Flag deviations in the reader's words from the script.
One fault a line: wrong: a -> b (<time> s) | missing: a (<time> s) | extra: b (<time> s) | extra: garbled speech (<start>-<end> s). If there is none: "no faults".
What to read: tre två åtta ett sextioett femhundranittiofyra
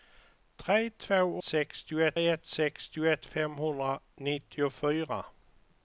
wrong: åtta -> sextioett (1.4 s)